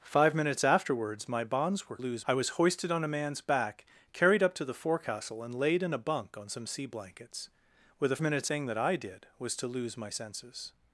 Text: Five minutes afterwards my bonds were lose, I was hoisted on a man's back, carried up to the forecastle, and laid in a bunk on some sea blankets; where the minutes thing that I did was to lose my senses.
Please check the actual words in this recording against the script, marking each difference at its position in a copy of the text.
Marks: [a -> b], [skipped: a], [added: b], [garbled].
Five minutes afterwards my bonds were lose, I was hoisted on a man's back, carried up to the forecastle, and laid in a bunk on some sea blankets; where the minutes thing that I did was to lose my senses.